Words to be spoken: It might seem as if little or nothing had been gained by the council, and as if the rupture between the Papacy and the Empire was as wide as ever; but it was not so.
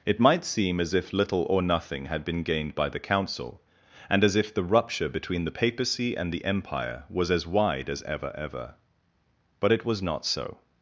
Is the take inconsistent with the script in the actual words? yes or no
yes